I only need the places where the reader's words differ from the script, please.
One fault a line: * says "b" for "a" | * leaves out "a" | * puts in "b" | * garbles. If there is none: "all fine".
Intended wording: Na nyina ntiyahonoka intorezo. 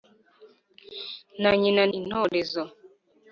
* leaves out "ntiyahonoka"